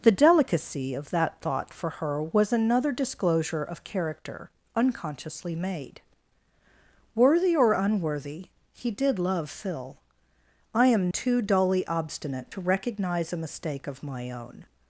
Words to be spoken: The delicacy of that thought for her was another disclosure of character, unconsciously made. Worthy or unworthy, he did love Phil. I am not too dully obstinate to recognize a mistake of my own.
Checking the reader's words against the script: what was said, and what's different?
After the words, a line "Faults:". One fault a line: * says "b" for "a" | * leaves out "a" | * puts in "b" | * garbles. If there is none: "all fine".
The delicacy of that thought for her was another disclosure of character, unconsciously made. Worthy or unworthy, he did love Phil. I am too dully obstinate to recognize a mistake of my own.
Faults:
* leaves out "not"